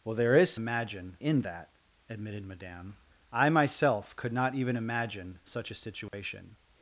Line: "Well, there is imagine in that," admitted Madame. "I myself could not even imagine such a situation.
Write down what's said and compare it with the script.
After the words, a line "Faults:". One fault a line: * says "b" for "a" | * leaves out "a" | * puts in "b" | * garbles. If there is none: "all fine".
"Well, there is imagine in that," admitted Madame. "I myself could not even imagine such a situation.
Faults:
all fine